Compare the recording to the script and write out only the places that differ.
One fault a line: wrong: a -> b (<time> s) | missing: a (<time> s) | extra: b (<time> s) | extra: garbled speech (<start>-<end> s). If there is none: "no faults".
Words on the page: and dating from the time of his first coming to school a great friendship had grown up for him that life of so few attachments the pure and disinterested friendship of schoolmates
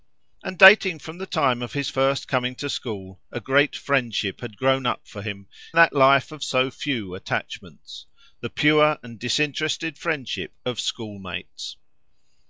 no faults